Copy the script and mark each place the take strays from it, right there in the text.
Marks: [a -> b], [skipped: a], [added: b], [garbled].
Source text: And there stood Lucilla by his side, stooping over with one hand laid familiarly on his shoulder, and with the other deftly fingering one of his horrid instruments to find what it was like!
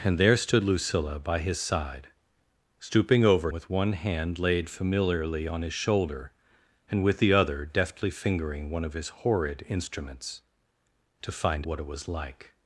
And there stood Lucilla by his side, stooping over with one hand laid familiarly on his shoulder, and with the other deftly fingering one of his horrid instruments to find what it was like!